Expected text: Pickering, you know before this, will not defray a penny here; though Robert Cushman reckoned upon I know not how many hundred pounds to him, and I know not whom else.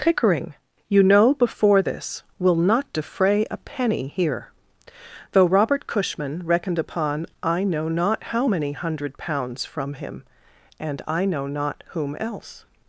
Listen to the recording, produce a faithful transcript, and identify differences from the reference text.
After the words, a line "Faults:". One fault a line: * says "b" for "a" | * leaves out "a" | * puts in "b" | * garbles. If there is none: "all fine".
Pickering, you know before this, will not defray a penny here; though Robert Cushman reckoned upon I know not how many hundred pounds from him, and I know not whom else.
Faults:
* says "from" for "to"